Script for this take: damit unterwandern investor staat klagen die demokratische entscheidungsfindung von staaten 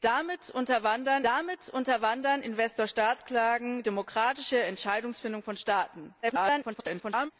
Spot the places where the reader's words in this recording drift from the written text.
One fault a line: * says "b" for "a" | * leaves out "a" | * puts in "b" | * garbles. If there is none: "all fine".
* puts in "damit unterwandern"
* leaves out "die"
* garbles